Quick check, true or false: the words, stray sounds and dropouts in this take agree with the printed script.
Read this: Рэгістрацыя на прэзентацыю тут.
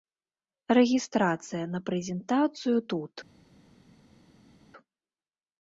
true